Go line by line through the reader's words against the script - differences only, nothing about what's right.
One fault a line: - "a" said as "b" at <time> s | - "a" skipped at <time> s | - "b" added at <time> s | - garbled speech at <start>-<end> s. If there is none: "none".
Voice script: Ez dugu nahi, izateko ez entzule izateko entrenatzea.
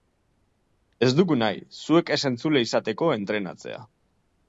- "izateko" said as "zuek" at 1.8 s